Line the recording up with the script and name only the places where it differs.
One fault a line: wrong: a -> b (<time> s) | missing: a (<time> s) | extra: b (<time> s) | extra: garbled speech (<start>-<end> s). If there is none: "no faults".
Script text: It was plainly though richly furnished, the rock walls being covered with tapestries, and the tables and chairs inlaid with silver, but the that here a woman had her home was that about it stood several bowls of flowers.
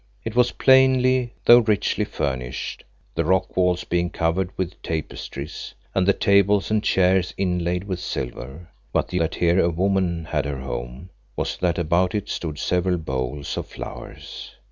no faults